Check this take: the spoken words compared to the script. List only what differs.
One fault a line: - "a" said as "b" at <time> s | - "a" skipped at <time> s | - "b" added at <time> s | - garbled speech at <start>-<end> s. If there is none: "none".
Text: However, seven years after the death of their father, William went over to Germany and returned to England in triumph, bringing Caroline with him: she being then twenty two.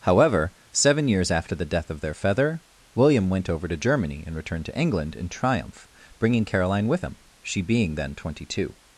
- "father" said as "feather" at 2.1 s